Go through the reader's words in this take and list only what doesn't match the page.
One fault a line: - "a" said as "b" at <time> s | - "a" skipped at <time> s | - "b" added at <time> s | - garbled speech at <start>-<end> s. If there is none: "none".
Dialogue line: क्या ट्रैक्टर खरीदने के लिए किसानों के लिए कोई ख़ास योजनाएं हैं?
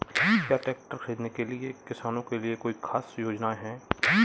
none